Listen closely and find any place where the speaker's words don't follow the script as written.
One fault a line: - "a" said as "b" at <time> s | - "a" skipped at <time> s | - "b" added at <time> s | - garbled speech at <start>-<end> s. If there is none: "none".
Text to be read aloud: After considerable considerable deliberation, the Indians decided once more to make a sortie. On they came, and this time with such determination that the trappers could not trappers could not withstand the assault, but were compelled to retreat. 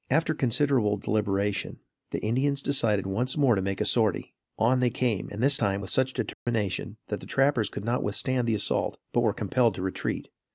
- "considerable" skipped at 1.0 s
- "trappers could not" skipped at 8.0 s